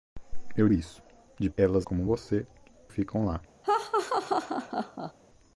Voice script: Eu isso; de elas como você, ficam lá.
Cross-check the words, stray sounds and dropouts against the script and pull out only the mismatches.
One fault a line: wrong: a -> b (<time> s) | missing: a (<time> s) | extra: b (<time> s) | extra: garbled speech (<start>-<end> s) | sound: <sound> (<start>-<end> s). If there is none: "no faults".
sound: laugh (3.6-5.1 s)